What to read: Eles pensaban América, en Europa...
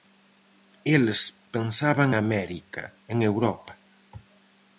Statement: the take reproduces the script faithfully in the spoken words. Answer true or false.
true